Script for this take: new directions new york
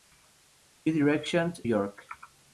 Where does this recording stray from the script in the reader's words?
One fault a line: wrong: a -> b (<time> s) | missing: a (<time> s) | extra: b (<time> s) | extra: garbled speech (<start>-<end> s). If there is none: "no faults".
missing: new (1.6 s)